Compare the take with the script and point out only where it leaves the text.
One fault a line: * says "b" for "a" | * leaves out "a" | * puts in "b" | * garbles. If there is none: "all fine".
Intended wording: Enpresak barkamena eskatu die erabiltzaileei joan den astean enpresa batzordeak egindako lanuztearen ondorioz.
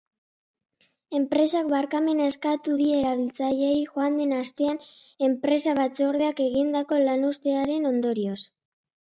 all fine